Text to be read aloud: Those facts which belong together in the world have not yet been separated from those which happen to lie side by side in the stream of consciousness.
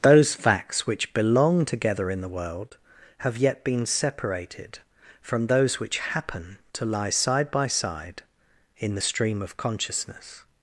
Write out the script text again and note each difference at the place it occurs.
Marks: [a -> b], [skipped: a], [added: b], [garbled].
Those facts which belong together in the world have [skipped: not] yet been separated from those which happen to lie side by side in the stream of consciousness.